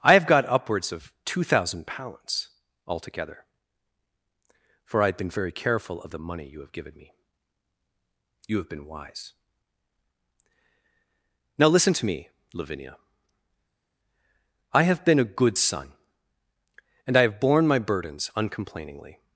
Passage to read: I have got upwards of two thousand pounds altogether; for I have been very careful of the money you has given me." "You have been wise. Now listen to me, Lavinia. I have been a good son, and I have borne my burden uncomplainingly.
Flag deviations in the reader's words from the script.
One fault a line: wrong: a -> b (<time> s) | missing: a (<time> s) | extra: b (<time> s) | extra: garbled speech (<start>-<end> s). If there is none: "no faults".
wrong: has -> have (6.6 s)
wrong: burden -> burdens (17.8 s)